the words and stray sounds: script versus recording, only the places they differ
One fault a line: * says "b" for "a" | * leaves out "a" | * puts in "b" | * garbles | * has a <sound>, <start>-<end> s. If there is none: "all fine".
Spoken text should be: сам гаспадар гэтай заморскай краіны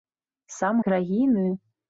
* leaves out "гаспадар гэтай заморскай"